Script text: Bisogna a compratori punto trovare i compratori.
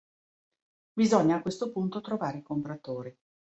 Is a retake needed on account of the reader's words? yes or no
yes